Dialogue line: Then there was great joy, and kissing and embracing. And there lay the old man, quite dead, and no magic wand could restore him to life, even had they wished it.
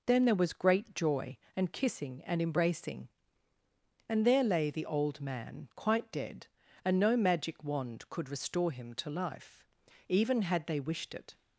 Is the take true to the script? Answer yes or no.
yes